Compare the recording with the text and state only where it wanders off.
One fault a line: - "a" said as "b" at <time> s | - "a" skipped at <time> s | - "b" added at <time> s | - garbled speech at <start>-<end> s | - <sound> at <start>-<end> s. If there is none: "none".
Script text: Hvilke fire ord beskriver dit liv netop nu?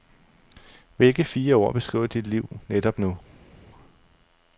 none